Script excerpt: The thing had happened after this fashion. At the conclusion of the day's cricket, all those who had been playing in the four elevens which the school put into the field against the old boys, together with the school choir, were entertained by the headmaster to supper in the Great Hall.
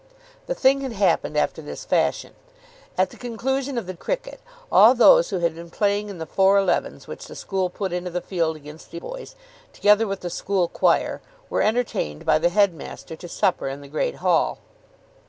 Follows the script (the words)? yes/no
no